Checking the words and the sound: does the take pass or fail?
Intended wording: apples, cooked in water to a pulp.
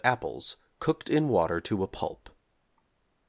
pass